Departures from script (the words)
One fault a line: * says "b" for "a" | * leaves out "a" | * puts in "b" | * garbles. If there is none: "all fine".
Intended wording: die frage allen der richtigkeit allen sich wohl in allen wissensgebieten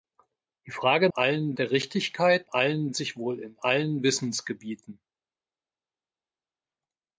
all fine